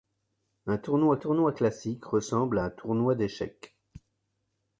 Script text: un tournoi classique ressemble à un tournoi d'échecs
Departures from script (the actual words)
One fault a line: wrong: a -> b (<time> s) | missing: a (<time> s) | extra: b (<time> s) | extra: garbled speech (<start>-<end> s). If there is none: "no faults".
extra: tournoi (1.2 s)
missing: à (2.6 s)